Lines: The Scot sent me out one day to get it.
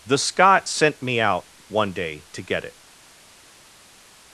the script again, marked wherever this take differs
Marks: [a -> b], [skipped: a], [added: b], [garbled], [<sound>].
The Scot sent me out one day to get it.